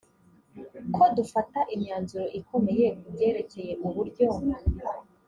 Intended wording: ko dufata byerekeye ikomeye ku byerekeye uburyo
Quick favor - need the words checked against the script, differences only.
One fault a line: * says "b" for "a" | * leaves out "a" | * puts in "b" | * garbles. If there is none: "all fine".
* says "imyanzuro" for "byerekeye"